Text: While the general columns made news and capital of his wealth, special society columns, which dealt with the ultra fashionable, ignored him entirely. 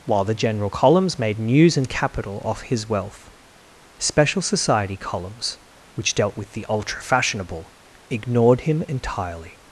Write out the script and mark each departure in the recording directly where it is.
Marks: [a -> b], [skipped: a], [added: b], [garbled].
While the general columns made news and capital [of -> off] his wealth, special society columns, which dealt with the ultra fashionable, ignored him entirely.